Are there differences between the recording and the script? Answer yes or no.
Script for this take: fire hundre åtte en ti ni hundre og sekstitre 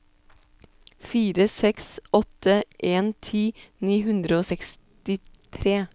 yes